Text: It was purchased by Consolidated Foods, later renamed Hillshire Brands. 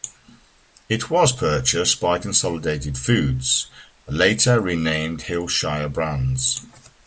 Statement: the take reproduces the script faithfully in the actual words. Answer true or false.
true